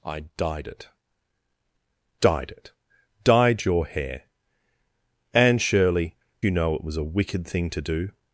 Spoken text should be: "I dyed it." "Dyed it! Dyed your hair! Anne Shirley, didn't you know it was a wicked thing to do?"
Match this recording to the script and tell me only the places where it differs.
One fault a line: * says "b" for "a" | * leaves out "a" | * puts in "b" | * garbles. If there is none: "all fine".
* leaves out "didn't"